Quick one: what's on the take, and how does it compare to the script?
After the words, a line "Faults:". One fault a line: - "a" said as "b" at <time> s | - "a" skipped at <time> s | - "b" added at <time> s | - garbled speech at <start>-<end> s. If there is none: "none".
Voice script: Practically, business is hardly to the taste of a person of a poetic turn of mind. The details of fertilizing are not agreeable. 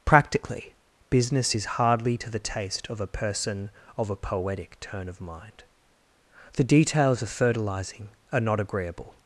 Practically, business is hardly to the taste of a person of a poetic turn of mind. The details of fertilizing are not agreeable.
Faults:
none